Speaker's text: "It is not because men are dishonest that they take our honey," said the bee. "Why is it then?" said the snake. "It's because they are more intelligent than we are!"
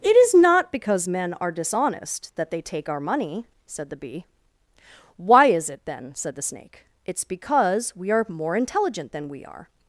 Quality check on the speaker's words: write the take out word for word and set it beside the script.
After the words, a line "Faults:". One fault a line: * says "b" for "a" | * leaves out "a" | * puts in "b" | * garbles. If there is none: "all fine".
"It is not because men are dishonest that they take our money," said the bee. "Why is it then?" said the snake. "It's because we are more intelligent than we are!"
Faults:
* says "money" for "honey"
* says "we" for "they"